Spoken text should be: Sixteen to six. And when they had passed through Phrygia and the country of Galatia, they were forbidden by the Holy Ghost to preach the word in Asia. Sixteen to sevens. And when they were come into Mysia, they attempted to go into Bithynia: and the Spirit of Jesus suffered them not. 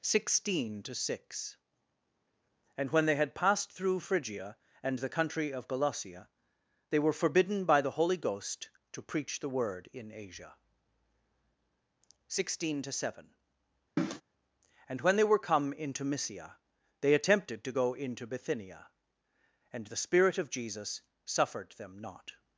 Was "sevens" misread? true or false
true